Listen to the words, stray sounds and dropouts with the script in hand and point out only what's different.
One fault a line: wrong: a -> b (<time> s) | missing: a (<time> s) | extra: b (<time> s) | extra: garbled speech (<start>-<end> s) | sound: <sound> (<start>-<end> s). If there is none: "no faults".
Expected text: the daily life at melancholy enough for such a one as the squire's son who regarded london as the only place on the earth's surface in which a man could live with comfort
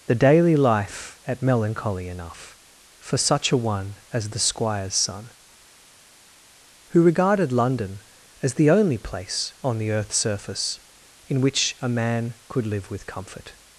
no faults